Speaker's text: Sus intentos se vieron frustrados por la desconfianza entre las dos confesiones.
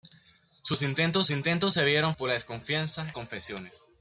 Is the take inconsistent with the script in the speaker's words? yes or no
yes